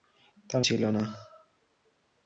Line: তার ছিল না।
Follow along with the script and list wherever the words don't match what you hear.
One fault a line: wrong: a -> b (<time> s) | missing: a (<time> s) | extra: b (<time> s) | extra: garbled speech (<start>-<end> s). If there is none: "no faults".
no faults